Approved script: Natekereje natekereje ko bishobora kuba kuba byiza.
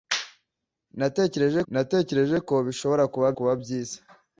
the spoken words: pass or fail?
pass